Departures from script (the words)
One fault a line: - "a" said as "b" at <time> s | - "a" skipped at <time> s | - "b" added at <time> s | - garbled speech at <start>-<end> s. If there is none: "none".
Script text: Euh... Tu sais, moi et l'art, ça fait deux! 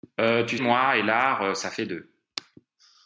- "sais" skipped at 0.6 s